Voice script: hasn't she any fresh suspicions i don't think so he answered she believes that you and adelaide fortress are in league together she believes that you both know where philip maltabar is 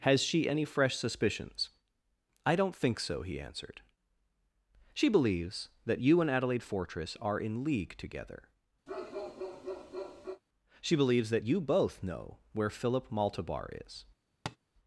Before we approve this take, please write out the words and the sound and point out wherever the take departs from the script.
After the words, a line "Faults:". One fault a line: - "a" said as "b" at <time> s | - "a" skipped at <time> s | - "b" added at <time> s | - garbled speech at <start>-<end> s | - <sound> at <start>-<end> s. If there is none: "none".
has she any fresh suspicions i don't think so he answered she believes that you and adelaide fortress are in league together she believes that you both know where philip maltabar is
Faults:
- "hasn't" said as "has" at 0.0 s
- bark at 8.9-10.4 s
- tap at 14.5-14.6 s